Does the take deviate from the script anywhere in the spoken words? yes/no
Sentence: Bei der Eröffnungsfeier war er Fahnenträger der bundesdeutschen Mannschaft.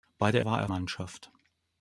yes